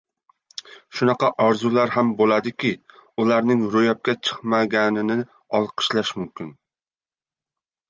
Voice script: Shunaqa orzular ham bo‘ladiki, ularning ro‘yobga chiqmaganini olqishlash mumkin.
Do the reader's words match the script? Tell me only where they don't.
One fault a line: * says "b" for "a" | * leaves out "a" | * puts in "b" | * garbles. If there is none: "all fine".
all fine